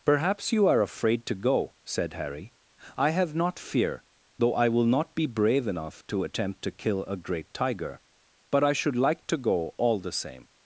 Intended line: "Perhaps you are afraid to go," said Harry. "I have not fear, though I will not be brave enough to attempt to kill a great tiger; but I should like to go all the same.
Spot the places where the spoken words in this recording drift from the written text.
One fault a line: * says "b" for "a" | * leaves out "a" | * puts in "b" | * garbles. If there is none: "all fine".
all fine